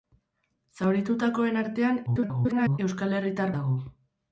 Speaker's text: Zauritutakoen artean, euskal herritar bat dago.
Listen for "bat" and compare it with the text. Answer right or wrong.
wrong